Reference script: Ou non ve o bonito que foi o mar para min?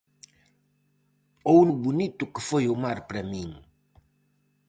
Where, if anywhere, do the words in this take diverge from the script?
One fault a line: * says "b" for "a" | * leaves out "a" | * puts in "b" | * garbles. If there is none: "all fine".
* leaves out "non ve"